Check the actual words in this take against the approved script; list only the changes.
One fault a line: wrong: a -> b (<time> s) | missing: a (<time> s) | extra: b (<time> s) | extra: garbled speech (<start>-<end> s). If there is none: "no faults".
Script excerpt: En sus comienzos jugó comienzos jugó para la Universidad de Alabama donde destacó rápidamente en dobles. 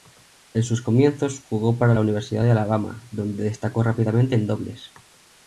missing: comienzos jugó (1.8 s)